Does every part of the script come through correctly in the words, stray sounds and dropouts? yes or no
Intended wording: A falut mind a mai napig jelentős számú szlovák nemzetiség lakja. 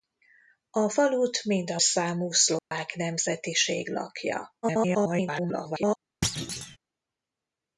no